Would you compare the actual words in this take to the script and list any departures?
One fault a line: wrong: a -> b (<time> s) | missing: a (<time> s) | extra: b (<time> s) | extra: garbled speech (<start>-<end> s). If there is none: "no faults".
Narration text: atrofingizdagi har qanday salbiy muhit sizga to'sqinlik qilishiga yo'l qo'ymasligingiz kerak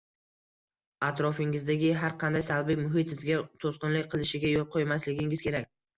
no faults